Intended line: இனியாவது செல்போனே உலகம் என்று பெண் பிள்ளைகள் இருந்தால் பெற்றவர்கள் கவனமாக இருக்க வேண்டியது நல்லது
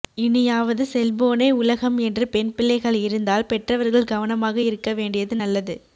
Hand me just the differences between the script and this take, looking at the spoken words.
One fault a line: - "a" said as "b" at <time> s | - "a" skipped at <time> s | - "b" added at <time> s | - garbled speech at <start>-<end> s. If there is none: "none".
none